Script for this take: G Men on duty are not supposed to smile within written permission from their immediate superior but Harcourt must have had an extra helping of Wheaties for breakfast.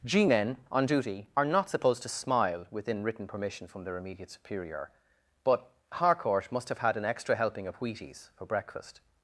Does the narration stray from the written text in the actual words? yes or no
no